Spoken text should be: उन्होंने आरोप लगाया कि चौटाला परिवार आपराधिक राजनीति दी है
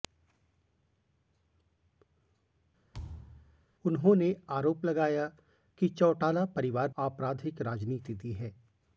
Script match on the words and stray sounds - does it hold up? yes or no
no